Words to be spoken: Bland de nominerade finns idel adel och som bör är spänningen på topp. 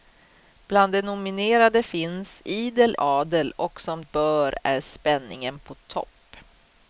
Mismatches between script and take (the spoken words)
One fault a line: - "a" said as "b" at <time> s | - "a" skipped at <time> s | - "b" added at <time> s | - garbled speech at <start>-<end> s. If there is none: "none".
none